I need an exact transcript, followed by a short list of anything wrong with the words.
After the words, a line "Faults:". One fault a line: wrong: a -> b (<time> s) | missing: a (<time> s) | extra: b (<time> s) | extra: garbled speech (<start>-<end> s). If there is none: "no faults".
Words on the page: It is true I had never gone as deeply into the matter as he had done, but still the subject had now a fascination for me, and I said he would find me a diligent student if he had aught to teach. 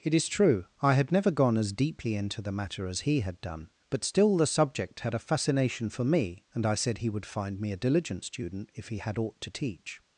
It is true I had never gone as deeply into the matter as he had done, but still the subject had a fascination for me, and I said he would find me a diligent student if he had aught to teach.
Faults:
missing: now (5.1 s)